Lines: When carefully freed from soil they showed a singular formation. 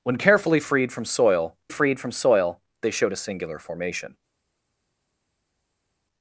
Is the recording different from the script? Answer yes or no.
yes